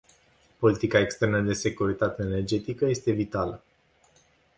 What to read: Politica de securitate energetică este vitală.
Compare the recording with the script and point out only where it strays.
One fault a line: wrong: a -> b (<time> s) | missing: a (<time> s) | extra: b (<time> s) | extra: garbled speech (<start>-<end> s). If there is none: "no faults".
extra: externă (1.0 s)